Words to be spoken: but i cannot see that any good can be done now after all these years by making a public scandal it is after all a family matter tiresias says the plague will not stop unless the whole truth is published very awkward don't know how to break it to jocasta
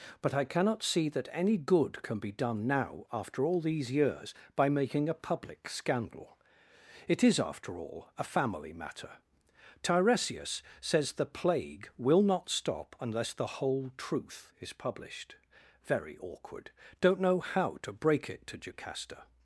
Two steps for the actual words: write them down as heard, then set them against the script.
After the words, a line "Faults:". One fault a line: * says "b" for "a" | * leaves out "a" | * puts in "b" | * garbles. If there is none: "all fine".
but i cannot see that any good can be done now after all these years by making a public scandal it is after all a family matter tiresias says the plague will not stop unless the whole truth is published very awkward don't know how to break it to jocasta
Faults:
all fine